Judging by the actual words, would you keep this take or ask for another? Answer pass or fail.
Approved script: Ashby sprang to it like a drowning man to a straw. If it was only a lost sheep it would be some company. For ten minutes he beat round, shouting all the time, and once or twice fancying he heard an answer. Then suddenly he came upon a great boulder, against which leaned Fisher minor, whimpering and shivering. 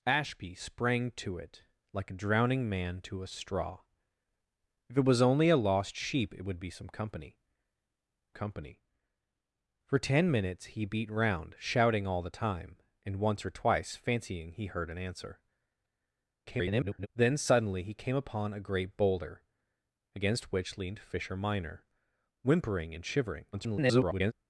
fail